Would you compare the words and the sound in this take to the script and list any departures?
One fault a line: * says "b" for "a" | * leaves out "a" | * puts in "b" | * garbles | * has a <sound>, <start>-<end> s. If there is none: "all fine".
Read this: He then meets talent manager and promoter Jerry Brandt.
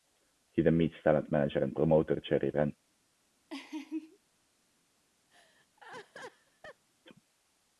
* has a laugh, 3.5-4.2 s
* has a laugh, 5.3-6.8 s